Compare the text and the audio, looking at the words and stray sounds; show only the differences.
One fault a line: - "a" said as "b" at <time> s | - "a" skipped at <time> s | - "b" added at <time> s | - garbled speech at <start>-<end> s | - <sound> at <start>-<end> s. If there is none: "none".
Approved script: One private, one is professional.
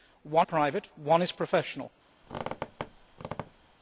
- squeak at 2.2-3.7 s